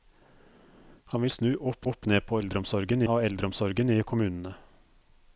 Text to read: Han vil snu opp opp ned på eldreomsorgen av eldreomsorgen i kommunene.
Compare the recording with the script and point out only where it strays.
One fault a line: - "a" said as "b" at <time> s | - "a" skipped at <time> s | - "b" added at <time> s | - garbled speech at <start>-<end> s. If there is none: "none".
none